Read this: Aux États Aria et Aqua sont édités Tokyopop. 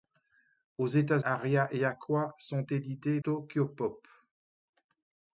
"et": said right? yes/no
yes